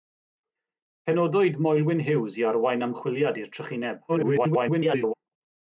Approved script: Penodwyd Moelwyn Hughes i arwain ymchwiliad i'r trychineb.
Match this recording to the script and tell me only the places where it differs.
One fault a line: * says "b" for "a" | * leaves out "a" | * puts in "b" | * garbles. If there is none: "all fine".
* garbles